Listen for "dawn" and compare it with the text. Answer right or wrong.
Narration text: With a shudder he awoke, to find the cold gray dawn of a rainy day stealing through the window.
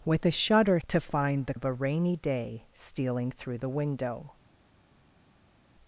wrong